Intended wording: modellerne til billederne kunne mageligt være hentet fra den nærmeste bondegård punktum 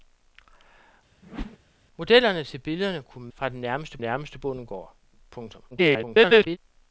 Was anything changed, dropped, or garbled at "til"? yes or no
no